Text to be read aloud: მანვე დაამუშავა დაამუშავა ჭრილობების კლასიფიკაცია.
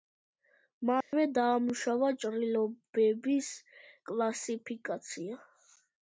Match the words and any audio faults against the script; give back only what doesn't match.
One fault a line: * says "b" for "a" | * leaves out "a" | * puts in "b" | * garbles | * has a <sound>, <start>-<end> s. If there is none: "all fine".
* has a dropout, 1.0-1.1 s
* leaves out "დაამუშავა"